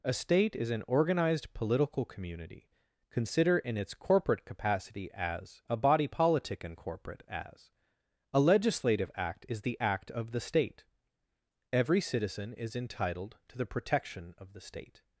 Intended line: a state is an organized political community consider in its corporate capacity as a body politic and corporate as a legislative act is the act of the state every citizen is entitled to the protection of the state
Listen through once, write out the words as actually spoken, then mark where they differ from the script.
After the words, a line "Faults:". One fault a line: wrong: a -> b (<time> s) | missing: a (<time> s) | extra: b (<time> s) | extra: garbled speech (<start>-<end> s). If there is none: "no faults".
a state is an organized political community consider in its corporate capacity as a body politic and corporate as a legislative act is the act of the state every citizen is entitled to the protection of the state
Faults:
no faults